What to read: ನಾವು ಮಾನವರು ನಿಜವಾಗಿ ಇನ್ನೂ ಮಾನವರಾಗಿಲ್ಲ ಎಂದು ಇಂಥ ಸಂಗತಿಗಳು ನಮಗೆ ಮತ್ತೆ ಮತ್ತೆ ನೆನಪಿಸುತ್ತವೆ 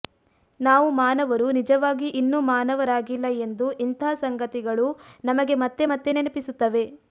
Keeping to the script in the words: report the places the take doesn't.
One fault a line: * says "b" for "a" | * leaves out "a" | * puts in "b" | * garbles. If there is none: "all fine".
all fine